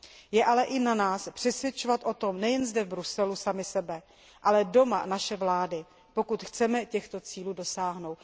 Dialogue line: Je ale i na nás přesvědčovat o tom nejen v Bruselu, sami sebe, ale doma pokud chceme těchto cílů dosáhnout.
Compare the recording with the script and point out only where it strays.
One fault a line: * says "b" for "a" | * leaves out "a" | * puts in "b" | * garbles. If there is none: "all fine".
* puts in "zde"
* puts in "naše vlády"